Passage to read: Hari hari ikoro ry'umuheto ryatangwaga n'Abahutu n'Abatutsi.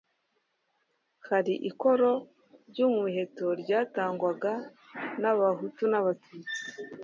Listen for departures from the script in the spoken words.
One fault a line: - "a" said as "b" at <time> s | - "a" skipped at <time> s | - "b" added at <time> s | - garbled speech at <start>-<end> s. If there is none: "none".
- "hari" skipped at 1.5 s